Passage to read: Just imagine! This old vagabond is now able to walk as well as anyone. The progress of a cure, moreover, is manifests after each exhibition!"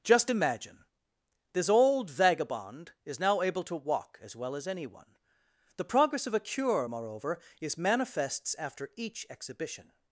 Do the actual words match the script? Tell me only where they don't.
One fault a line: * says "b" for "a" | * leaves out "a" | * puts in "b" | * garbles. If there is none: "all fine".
all fine